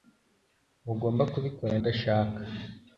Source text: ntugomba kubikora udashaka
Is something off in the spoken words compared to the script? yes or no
no